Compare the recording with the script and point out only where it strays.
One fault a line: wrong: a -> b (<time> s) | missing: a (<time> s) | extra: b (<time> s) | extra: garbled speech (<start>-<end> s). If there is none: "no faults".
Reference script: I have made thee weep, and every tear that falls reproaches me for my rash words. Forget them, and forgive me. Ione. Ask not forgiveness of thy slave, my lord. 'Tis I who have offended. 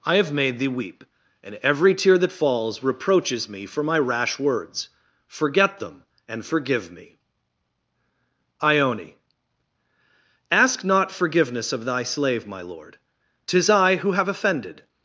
no faults